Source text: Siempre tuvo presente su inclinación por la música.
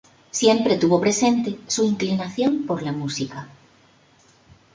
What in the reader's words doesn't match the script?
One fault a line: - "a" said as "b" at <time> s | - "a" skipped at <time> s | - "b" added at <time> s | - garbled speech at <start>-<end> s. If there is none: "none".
none